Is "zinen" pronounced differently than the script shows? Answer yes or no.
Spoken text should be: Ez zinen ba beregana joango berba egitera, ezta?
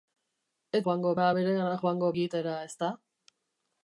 yes